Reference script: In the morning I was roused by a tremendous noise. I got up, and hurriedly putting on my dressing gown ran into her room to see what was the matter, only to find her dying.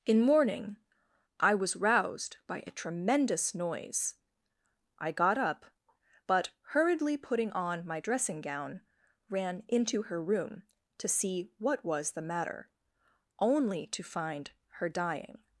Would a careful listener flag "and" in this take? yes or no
yes